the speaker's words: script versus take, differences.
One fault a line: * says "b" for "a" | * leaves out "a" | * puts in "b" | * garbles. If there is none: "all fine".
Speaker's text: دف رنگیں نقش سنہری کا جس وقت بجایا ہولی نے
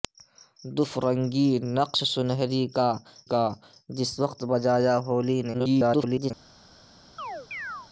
* puts in "کا"
* garbles